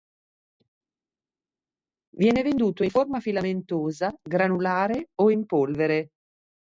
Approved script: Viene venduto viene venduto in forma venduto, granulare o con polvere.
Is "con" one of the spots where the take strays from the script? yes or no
yes